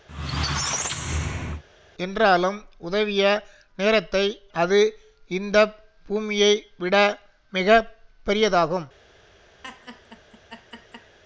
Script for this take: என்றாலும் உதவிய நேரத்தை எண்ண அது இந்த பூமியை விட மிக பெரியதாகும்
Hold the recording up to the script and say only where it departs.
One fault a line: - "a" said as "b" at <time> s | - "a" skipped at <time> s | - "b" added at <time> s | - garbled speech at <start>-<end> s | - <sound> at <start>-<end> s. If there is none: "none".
- squeak at 0.1-1.6 s
- "எண்ண" skipped at 4.2 s
- laugh at 9.6-11.2 s